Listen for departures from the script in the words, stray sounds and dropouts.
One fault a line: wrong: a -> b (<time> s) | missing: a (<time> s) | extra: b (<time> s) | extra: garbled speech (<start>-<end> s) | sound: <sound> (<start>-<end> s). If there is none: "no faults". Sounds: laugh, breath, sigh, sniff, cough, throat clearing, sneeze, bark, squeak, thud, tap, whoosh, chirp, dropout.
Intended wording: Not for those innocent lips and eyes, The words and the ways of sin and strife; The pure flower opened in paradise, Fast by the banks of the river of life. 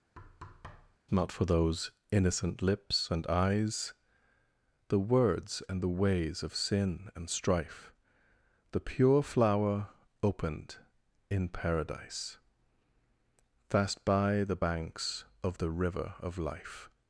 sound: thud (0.2-1.0 s)